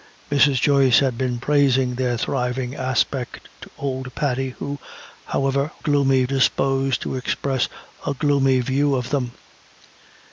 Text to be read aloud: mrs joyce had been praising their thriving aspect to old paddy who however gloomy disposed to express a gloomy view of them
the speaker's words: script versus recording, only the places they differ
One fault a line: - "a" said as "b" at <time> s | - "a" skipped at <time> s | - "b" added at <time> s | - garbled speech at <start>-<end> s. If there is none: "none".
none